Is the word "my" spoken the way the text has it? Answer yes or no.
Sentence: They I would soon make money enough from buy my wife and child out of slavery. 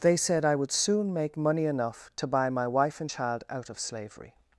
yes